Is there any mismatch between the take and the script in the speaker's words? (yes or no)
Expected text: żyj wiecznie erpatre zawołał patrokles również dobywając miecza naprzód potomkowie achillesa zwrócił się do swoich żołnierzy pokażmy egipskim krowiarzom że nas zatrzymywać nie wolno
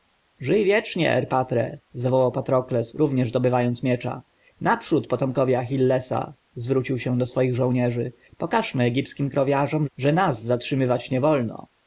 no